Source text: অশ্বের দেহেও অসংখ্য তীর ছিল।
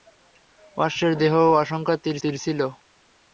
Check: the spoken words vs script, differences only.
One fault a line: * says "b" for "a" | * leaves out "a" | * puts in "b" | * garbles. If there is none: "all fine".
* puts in "তীর"